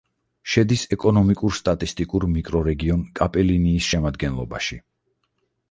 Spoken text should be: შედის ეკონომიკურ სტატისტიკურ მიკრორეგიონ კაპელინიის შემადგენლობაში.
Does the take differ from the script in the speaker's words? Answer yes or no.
no